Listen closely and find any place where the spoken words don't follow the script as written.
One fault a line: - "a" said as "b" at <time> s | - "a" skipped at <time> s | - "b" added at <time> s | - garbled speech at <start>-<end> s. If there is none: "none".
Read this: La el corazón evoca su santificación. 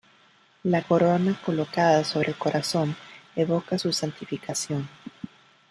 - "corona colocada sobre" added at 0.8 s